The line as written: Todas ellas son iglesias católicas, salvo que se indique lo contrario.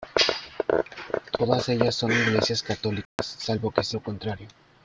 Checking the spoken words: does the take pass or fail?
fail